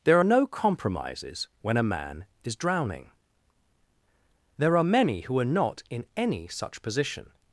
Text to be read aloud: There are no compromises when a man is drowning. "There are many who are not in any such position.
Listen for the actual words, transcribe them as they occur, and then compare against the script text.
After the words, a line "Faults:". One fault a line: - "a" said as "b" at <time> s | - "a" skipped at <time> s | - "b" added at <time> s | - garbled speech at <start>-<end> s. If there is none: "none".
There are no compromises when a man is drowning. "There are many who are not in any such position.
Faults:
none